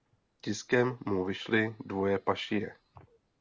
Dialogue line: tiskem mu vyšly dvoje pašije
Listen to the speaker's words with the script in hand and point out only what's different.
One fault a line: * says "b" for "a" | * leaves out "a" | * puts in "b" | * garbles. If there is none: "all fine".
all fine